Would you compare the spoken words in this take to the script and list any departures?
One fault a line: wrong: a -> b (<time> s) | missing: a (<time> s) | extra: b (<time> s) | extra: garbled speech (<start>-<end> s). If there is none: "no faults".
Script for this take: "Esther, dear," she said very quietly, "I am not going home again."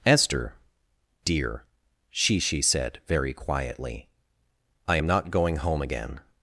extra: she (2.4 s)